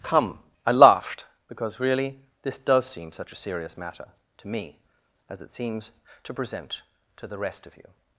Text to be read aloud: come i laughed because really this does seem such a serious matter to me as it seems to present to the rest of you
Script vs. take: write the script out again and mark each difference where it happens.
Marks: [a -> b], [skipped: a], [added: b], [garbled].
come i laughed because really this does seem such a serious matter to me as it seems to present to the rest of you